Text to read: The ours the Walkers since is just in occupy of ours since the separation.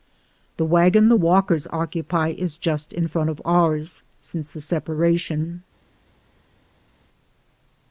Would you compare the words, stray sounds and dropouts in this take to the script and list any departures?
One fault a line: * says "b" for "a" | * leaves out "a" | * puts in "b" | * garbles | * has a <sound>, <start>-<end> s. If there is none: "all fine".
* says "wagon" for "ours"
* says "occupy" for "since"
* says "front" for "occupy"